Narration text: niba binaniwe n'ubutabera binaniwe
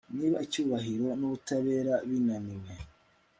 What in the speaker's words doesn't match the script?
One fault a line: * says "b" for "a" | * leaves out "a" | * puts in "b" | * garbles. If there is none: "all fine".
* says "icyubahiro" for "binaniwe"